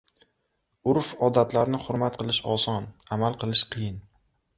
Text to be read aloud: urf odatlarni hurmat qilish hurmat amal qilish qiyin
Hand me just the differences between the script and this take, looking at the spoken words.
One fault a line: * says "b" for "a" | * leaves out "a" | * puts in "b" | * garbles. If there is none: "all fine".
* says "oson" for "hurmat"